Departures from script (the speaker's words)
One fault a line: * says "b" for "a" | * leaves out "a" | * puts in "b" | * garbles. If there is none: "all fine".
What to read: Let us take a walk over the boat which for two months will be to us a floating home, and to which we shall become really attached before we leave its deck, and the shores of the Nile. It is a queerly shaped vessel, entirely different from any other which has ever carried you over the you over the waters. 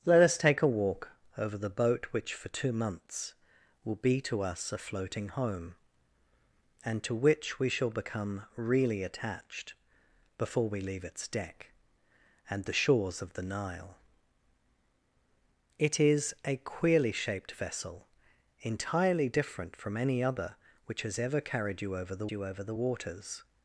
all fine